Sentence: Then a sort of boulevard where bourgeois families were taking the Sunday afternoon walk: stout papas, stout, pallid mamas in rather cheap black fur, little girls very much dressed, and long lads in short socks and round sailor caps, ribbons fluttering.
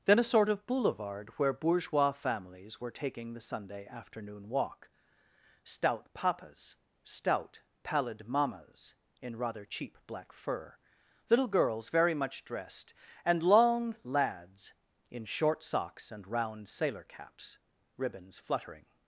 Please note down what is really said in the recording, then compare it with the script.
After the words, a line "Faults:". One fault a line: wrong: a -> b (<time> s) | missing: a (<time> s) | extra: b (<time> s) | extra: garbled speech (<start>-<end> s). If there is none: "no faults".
Then a sort of boulevard where bourgeois families were taking the Sunday afternoon walk: stout papas, stout, pallid mamas in rather cheap black fur, little girls very much dressed, and long lads in short socks and round sailor caps, ribbons fluttering.
Faults:
no faults